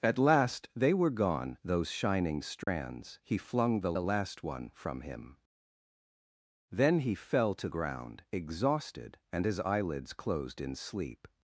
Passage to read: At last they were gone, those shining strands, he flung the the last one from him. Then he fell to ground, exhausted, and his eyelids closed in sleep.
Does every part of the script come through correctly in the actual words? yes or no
yes